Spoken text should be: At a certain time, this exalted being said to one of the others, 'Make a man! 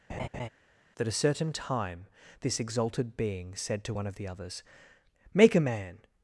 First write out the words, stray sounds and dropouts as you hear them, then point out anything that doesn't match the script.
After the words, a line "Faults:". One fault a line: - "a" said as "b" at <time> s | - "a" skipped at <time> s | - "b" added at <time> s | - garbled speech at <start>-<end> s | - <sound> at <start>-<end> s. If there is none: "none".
That a certain time, this exalted being said to one of the others, 'Make a man!
Faults:
- laugh at 0.1-0.5 s
- "At" said as "That" at 0.9 s